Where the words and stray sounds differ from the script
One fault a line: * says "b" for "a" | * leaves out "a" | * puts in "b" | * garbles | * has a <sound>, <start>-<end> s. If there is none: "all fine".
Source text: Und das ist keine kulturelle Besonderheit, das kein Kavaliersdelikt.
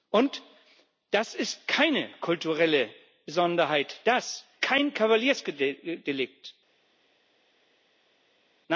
all fine